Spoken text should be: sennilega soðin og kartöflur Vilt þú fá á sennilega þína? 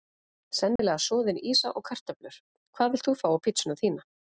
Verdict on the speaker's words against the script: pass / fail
fail